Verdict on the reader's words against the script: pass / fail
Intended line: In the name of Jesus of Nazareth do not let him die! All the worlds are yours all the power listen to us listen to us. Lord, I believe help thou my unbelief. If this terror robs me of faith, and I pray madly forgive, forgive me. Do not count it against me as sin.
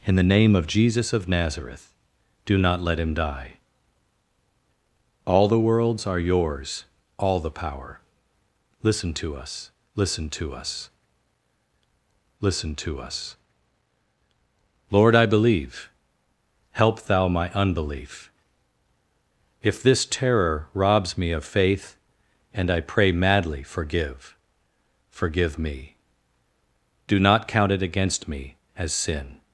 fail